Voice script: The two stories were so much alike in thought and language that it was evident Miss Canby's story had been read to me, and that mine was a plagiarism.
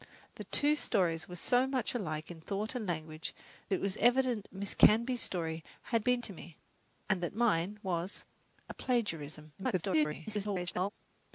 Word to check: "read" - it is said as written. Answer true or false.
false